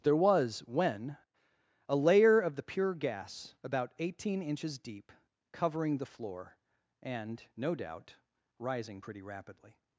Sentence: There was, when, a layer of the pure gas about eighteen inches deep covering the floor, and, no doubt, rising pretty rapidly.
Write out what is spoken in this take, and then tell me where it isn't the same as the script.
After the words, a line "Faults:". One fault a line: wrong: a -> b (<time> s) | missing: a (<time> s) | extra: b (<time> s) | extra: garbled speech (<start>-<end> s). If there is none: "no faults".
There was, when, a layer of the pure gas about eighteen inches deep covering the floor, and, no doubt, rising pretty rapidly.
Faults:
no faults